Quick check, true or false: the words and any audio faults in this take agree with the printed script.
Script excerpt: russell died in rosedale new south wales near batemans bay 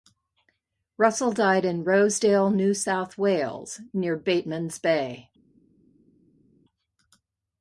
true